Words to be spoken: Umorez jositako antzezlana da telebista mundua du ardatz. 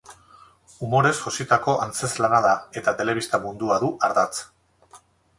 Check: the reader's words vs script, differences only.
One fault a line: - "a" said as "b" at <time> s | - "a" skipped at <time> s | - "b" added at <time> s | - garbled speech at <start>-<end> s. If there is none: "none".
- "eta" added at 2.8 s